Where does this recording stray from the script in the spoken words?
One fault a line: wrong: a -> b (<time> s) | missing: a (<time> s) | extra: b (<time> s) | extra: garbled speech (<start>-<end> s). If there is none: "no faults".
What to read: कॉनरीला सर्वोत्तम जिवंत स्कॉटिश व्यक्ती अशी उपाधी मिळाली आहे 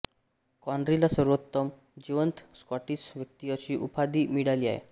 no faults